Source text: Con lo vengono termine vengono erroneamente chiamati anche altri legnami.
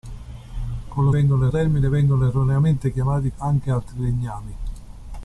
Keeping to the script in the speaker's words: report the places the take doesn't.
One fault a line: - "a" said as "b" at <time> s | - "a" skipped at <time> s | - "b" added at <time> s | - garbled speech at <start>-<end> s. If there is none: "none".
none